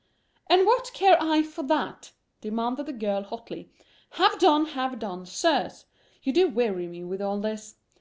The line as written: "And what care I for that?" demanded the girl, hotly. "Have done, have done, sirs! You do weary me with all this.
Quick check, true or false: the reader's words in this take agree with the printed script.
true